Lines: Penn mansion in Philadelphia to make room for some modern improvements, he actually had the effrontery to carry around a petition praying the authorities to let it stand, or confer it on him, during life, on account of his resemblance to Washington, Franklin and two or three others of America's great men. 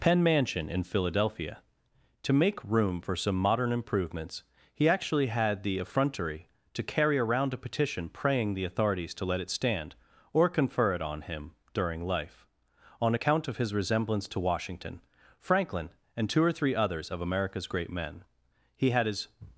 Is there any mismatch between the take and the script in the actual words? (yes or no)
yes